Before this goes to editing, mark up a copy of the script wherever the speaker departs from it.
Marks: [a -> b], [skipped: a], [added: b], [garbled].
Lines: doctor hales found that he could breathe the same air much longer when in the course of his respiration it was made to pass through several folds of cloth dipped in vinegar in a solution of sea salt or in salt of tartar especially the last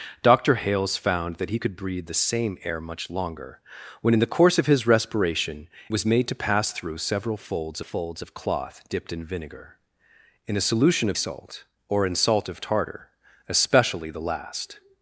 doctor hales found that he could breathe the same air much longer when in the course of his respiration [skipped: it] was made to pass through several folds [added: folds] of cloth dipped in vinegar in a solution of [skipped: sea] salt or in salt of tartar especially the last